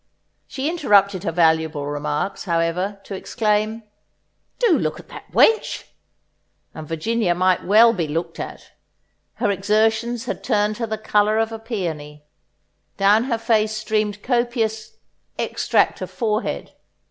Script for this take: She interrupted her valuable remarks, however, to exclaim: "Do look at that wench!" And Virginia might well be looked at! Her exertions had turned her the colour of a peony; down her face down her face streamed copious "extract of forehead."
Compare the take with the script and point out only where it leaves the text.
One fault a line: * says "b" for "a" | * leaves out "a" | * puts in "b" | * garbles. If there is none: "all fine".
* leaves out "down her face"